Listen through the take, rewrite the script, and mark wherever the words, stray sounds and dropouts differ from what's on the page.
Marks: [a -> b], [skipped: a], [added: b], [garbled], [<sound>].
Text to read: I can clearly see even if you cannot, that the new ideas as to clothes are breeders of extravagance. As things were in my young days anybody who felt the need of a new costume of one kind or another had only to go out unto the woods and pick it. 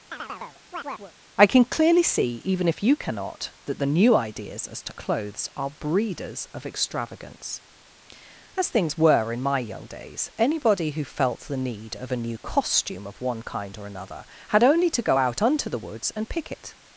[chirp] I can clearly see even if you cannot, that the new ideas as to clothes are breeders of extravagance. As things were in my young days anybody who felt the need of a new costume of one kind or another had only to go out unto the woods and pick it.